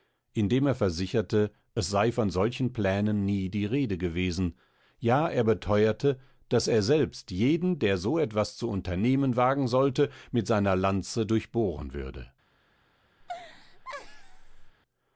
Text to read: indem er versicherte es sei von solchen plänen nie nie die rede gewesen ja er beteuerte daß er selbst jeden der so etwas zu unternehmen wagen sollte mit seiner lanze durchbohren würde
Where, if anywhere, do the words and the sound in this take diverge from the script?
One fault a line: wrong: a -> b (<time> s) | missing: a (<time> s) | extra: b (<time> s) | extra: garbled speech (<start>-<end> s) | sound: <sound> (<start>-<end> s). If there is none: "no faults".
missing: nie (3.5 s)
sound: laugh (13.2-14.8 s)